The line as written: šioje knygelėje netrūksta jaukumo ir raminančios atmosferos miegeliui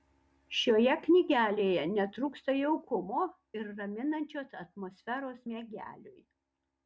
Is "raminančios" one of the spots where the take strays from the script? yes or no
no